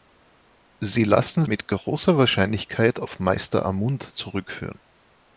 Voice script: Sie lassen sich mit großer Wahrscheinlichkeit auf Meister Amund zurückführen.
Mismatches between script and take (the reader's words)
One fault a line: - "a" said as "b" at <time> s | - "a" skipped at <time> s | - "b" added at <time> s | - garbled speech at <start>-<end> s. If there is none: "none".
- "sich" skipped at 1.4 s